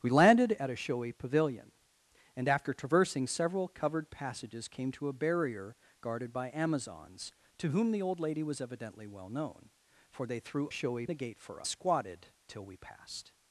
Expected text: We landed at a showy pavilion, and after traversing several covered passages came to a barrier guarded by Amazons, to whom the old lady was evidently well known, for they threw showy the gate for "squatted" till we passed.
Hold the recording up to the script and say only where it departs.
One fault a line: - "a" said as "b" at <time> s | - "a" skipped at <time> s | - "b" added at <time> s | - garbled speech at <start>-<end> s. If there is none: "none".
none